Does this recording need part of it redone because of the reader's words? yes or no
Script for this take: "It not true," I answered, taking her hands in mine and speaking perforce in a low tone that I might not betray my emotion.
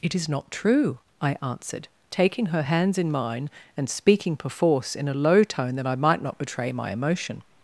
yes